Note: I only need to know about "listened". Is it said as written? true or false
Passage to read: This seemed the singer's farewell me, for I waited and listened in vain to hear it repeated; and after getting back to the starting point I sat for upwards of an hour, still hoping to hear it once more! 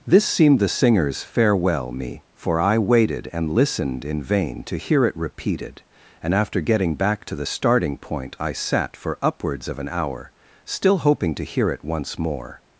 true